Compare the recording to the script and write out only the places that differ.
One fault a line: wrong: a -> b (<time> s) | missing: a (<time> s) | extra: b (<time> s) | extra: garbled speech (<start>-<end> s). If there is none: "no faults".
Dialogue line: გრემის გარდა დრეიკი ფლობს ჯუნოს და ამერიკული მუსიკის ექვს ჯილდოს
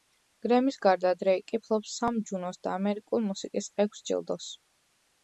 extra: სამ (2.0 s)